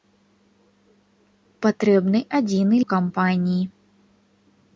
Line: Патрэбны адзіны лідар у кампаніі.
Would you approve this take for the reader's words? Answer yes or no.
no